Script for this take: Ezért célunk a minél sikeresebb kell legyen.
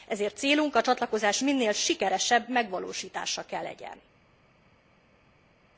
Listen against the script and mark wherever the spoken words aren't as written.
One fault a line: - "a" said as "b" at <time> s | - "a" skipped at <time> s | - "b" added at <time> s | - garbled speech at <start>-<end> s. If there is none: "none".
- "csatlakozás" added at 0.8 s
- "megvalósítása" added at 2.5 s